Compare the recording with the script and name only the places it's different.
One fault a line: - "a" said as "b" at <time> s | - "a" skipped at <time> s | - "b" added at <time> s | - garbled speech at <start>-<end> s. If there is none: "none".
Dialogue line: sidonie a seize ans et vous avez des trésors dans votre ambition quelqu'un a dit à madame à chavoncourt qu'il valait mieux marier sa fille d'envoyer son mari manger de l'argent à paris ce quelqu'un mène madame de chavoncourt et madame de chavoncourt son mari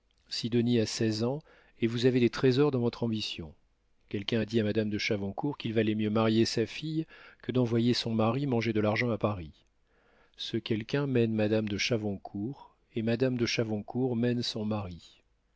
- "à" said as "de" at 4.9 s
- "que" added at 7.4 s
- "mène" added at 14.1 s